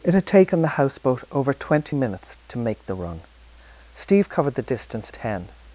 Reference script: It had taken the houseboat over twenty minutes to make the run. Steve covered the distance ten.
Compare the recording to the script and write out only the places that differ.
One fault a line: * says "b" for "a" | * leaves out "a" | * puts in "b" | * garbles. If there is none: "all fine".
all fine